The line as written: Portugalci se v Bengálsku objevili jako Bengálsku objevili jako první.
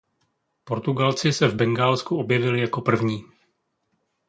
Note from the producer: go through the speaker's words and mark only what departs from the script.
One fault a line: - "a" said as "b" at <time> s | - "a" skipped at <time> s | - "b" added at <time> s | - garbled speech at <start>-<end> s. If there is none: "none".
- "Bengálsku objevili jako" skipped at 2.8 s